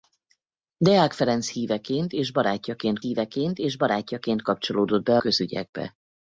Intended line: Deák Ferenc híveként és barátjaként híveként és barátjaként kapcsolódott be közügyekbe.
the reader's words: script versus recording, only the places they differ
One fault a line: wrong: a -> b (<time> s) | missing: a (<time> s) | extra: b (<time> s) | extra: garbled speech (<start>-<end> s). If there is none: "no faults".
no faults